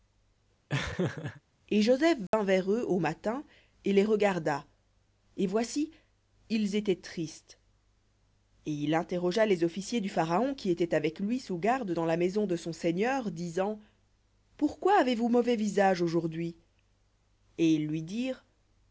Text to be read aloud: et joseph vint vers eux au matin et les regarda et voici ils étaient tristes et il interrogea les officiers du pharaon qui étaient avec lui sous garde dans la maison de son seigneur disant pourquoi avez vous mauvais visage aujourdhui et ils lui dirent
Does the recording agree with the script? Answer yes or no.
yes